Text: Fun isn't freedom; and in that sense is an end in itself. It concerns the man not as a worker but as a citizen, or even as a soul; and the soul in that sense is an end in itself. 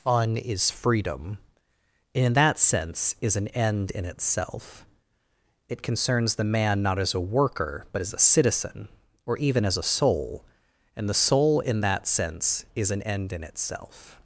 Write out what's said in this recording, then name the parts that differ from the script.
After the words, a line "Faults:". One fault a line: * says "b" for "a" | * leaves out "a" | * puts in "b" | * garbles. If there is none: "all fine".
Fun is freedom; and in that sense is an end in itself. It concerns the man not as a worker but as a citizen, or even as a soul; and the soul in that sense is an end in itself.
Faults:
* says "is" for "isn't"